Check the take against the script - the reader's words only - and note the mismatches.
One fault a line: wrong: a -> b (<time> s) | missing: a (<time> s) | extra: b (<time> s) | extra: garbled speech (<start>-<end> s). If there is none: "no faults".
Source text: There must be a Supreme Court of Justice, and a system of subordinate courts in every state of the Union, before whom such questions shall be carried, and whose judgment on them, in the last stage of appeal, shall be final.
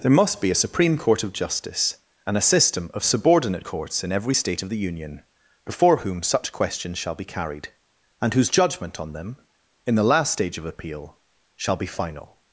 no faults